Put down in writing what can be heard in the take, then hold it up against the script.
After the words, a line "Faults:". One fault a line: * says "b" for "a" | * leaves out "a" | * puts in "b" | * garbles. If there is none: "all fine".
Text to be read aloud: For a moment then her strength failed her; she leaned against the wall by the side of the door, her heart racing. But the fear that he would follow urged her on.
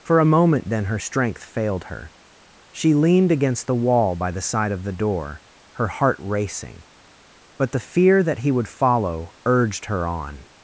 For a moment then her strength failed her; she leaned against the wall by the side of the door, her heart racing. But the fear that he would follow urged her on.
Faults:
all fine